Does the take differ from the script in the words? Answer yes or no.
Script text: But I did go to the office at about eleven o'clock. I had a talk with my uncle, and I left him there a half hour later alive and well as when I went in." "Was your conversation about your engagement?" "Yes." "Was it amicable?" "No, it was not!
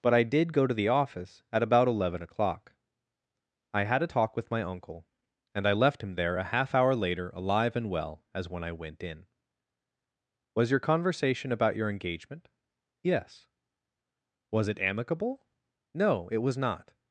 no